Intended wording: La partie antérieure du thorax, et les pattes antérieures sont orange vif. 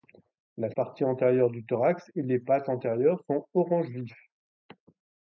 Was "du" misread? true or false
false